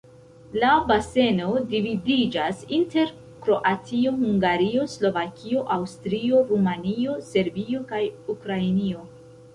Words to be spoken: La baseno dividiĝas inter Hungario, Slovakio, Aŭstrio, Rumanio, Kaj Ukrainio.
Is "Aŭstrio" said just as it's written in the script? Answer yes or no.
yes